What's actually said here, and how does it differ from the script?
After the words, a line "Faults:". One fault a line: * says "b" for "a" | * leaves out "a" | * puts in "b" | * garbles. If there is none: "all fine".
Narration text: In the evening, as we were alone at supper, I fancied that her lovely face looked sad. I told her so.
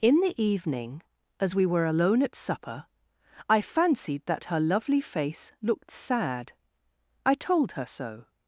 In the evening, as we were alone at supper, I fancied that her lovely face looked sad. I told her so.
Faults:
all fine